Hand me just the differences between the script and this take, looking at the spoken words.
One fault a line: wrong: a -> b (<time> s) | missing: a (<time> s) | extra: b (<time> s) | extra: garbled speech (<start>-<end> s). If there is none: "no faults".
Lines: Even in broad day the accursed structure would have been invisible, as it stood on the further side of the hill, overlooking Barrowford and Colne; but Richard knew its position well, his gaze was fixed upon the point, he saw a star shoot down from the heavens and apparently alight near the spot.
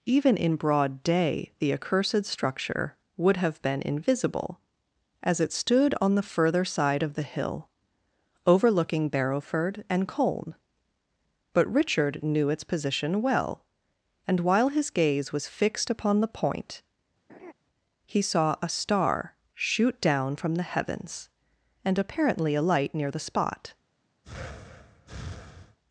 extra: and while (14.3 s)